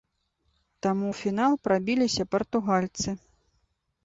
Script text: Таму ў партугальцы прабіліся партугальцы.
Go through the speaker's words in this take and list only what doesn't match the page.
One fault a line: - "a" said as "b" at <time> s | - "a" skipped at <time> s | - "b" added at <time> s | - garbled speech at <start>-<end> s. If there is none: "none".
- "партугальцы" said as "фінал" at 1.2 s